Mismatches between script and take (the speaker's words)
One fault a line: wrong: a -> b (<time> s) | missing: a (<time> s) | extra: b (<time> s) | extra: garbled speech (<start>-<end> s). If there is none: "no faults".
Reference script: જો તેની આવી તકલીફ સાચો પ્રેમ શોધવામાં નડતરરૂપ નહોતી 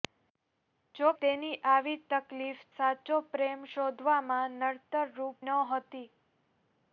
no faults